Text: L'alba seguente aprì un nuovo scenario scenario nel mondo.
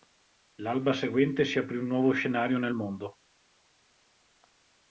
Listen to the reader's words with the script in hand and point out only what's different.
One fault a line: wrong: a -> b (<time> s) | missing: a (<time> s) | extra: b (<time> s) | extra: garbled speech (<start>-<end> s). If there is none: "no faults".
extra: si (1.4 s)
missing: scenario (2.6 s)